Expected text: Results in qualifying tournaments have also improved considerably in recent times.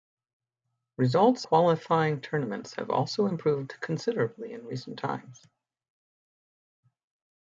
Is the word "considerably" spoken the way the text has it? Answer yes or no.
yes